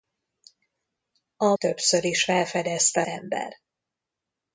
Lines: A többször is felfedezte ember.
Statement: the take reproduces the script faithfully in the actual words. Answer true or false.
true